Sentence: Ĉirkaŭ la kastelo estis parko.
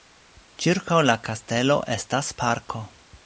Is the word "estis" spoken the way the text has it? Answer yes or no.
no